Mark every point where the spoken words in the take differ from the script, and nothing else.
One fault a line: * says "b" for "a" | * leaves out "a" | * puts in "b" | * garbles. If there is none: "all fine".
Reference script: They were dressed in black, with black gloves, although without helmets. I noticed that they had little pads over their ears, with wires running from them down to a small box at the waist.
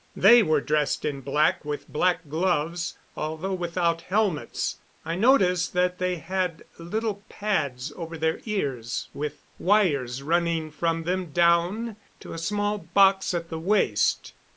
all fine